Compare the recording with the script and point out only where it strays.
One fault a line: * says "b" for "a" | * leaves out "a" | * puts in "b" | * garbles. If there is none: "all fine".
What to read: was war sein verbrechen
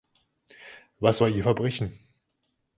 * says "ihr" for "sein"